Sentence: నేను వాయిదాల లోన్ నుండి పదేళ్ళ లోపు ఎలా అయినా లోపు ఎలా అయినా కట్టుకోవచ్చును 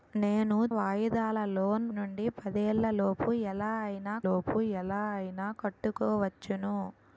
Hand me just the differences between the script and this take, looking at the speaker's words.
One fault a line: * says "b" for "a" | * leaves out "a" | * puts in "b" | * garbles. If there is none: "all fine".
all fine